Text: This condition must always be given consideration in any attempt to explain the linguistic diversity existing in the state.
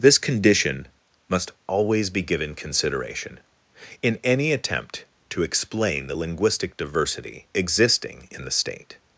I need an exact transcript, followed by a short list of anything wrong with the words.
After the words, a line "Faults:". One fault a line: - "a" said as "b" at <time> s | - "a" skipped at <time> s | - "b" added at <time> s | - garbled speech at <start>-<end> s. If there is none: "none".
This condition must always be given consideration in any attempt to explain the linguistic diversity existing in the state.
Faults:
none